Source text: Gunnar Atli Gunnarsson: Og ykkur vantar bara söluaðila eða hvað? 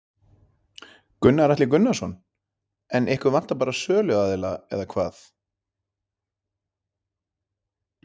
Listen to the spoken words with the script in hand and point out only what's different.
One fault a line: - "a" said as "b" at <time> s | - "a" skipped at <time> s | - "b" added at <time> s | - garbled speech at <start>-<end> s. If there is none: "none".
- "Og" said as "En" at 3.0 s